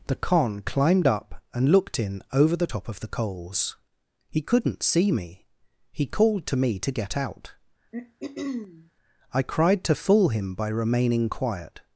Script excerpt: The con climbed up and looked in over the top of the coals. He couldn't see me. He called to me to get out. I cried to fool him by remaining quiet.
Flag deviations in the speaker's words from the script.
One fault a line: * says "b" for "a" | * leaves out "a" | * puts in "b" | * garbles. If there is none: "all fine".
all fine